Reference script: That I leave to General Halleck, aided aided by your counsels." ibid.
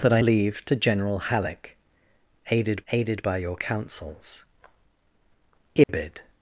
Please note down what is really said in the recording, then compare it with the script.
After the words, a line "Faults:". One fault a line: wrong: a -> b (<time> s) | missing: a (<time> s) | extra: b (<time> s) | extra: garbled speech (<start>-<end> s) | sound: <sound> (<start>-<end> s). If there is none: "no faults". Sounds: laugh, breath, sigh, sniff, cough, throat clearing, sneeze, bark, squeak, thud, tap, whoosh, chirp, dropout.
That I leave to General Halleck, aided aided by your counsels." ibid.
Faults:
sound: dropout (5.8-5.9 s)